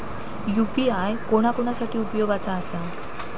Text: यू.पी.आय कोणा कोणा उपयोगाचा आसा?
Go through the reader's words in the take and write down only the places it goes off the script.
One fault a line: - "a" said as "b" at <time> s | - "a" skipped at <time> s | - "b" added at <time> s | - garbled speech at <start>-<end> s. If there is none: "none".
- "साठी" added at 1.7 s